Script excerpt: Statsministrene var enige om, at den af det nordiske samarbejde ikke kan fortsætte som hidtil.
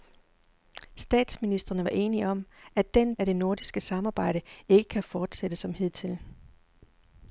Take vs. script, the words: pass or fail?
pass